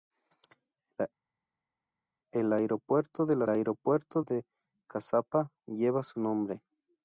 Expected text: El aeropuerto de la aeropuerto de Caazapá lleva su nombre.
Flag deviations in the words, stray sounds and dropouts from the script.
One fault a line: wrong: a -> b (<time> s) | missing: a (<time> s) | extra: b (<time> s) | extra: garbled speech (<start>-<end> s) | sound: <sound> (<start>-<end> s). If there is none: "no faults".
no faults